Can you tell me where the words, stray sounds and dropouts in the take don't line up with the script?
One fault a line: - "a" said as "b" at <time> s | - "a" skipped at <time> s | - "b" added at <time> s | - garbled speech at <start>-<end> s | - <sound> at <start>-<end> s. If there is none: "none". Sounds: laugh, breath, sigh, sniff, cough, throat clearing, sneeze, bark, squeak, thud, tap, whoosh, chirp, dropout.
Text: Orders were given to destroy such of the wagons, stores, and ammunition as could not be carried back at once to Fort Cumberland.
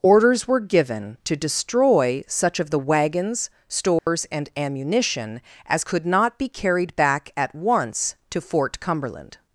- dropout at 4.0-4.1 s